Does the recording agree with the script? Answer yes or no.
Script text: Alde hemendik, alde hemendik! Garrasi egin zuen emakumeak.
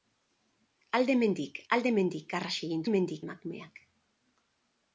no